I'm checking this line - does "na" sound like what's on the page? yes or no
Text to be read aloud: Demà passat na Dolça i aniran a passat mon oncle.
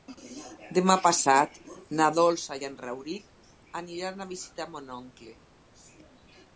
yes